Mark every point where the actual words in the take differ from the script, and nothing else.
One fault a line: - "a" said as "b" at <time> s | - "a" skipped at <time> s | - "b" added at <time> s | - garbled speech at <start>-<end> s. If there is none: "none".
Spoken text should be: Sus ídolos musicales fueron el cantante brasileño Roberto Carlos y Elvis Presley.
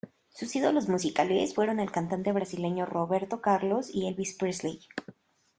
none